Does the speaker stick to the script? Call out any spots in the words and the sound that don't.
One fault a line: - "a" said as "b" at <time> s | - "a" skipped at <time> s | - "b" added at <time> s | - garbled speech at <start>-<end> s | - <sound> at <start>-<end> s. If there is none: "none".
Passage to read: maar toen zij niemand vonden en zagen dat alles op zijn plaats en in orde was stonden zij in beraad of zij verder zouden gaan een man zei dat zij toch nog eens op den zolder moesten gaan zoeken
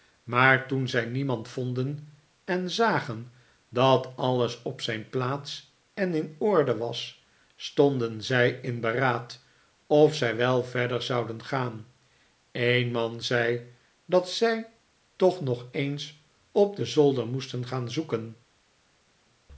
- "wel" added at 10.3 s